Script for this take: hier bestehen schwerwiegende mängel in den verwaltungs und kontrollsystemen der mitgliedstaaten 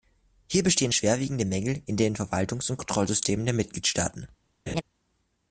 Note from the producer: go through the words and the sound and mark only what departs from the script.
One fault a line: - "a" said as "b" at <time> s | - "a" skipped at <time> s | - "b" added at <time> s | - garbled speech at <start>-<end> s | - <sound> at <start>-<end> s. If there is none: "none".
- laugh at 4.7-4.8 s